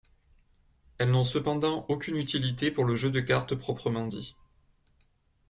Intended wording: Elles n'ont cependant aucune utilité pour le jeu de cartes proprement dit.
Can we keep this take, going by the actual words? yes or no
yes